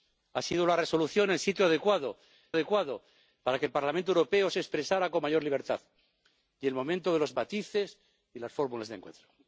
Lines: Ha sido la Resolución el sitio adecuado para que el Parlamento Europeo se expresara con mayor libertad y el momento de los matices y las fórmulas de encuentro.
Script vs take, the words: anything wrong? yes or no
yes